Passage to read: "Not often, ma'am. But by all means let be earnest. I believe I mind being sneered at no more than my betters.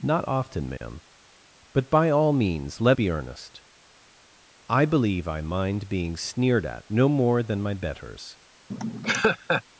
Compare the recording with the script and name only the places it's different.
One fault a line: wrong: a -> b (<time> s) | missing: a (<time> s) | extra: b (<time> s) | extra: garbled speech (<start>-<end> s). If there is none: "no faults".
no faults